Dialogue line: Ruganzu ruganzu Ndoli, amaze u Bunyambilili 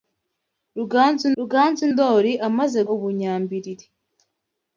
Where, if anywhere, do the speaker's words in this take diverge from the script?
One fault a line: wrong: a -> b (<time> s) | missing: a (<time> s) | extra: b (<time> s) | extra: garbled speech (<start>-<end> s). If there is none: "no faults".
no faults